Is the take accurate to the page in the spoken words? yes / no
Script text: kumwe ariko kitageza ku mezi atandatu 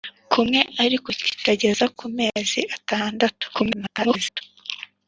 no